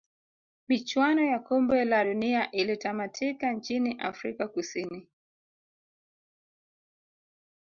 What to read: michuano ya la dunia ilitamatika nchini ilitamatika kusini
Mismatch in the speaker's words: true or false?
true